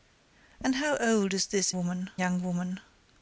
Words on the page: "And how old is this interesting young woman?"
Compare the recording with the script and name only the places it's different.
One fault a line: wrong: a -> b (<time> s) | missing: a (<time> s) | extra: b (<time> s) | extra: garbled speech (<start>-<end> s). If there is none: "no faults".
wrong: interesting -> woman (1.7 s)